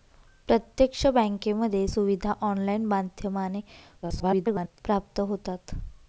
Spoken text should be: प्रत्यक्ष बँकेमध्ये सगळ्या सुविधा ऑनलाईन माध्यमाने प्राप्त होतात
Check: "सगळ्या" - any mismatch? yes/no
yes